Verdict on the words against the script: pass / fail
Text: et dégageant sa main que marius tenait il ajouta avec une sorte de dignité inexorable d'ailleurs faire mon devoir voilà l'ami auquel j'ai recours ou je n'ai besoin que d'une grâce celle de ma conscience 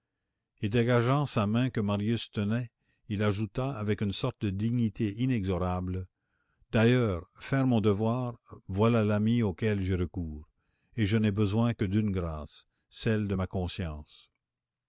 fail